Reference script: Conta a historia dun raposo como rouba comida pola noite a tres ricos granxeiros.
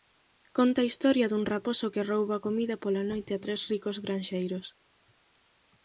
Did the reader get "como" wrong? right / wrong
wrong